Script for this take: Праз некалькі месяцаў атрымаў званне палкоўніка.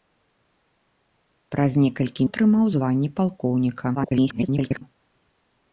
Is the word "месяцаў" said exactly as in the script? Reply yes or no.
no